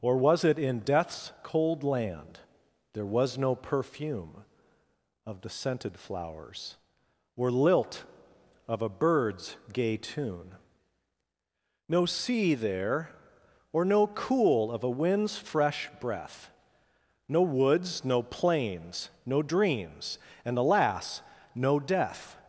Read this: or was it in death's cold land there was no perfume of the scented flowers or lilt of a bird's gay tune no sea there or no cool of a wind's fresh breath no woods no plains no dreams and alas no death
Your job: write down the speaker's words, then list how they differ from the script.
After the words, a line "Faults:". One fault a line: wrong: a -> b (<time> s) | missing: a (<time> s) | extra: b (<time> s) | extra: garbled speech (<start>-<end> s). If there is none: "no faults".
or was it in death's cold land there was no perfume of the scented flowers or lilt of a bird's gay tune no sea there or no cool of a wind's fresh breath no woods no plains no dreams and alas no death
Faults:
no faults